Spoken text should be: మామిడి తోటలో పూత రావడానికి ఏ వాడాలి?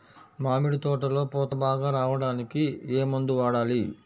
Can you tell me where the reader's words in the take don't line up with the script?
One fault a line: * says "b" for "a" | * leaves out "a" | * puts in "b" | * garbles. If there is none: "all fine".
* puts in "బాగా"
* puts in "మందు"